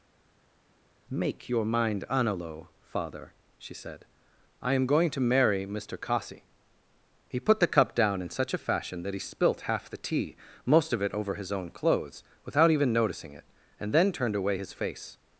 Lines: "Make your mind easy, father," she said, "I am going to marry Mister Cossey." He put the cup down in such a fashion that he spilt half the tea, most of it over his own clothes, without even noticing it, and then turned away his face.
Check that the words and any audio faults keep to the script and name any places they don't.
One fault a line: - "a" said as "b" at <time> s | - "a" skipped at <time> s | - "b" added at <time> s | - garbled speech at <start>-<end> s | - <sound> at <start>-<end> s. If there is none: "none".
- "easy" said as "analo" at 2.1 s